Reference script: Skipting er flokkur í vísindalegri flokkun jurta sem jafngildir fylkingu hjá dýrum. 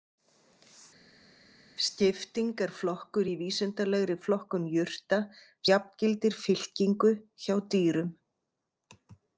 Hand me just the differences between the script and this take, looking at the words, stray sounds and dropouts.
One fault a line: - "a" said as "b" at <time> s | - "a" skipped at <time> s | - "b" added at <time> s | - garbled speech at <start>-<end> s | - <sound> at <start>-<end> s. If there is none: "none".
- "sem" skipped at 5.2 s